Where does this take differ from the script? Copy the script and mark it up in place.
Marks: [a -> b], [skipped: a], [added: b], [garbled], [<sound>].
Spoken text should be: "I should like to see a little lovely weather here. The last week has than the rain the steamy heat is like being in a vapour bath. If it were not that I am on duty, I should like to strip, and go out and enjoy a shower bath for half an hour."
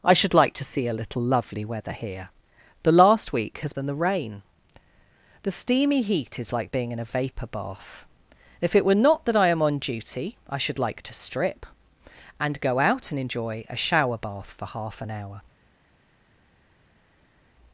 "I should like to see a little lovely weather here. The last week has than the rain the steamy heat is like being in a vapour bath. If it were not that I am on duty, I should like to strip, and go out and enjoy a shower bath for half an hour."